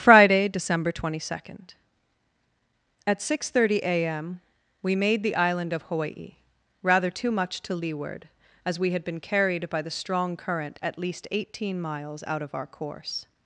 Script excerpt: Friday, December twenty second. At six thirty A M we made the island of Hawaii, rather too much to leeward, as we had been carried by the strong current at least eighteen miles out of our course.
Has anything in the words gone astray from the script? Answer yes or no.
no